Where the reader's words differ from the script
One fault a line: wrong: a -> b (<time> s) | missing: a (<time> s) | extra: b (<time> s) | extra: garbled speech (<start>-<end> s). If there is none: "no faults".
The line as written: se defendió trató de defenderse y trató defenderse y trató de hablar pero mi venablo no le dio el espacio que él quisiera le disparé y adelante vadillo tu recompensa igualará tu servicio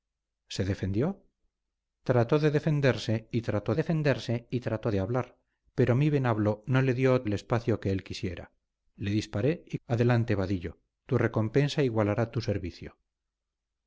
no faults